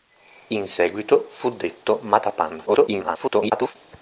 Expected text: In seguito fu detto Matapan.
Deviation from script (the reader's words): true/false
true